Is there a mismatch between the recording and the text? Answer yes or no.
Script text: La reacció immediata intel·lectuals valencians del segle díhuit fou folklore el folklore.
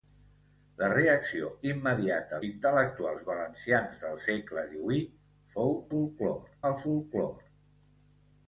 no